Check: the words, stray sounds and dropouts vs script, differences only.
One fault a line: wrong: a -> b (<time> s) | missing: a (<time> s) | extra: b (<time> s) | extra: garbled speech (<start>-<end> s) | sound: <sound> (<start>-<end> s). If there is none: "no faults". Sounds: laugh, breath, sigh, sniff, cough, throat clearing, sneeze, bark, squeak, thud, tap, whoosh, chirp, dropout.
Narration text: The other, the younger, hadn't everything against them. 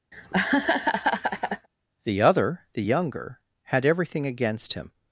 sound: laugh (0.1-1.7 s)
wrong: hadn't -> had (3.6 s)
wrong: them -> him (4.7 s)